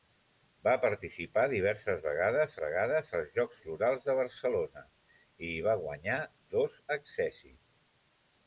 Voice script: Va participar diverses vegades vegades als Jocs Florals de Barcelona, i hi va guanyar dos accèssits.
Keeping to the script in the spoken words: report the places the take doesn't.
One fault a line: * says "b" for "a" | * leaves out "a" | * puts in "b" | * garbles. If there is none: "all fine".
all fine